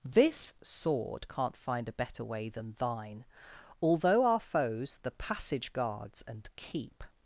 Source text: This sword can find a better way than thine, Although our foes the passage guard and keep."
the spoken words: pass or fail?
fail